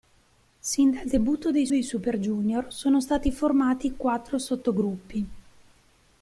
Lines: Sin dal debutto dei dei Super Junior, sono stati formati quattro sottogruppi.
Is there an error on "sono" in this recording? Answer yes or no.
no